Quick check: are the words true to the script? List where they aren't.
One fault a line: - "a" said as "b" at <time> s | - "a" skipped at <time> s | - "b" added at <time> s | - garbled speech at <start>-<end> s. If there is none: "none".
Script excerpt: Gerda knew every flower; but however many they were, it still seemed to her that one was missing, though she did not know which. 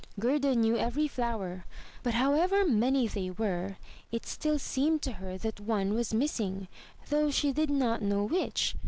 none